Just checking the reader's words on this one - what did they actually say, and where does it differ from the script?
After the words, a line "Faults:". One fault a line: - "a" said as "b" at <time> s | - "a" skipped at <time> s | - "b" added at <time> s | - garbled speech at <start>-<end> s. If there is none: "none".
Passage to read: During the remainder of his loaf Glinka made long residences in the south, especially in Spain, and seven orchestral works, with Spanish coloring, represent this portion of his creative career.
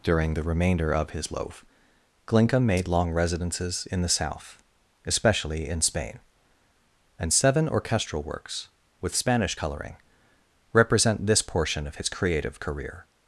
During the remainder of his loaf Glinka made long residences in the south, especially in Spain, and seven orchestral works, with Spanish coloring, represent this portion of his creative career.
Faults:
none